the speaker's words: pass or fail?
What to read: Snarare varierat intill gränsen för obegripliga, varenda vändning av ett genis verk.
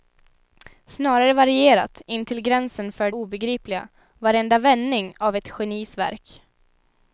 pass